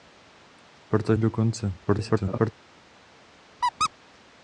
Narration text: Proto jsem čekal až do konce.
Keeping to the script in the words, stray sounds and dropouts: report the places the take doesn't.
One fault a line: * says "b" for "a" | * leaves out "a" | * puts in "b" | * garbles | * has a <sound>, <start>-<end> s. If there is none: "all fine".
* leaves out "jsem čekal až"
* garbles
* has a squeak, 3.6-3.9 s